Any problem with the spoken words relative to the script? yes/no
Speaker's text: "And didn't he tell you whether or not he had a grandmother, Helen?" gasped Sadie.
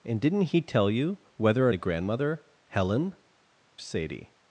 yes